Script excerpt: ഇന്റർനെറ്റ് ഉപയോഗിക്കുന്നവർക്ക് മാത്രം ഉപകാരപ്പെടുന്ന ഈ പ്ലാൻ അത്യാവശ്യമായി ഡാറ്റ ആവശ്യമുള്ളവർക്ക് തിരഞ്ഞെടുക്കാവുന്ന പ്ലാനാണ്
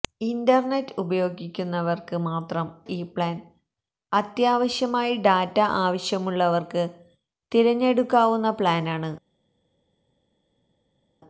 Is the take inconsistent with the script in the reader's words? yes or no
yes